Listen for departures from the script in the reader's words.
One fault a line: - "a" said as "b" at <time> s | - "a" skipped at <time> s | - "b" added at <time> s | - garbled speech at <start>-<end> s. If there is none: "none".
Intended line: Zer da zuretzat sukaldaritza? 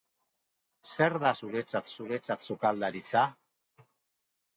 - "zuretzat" added at 2.0 s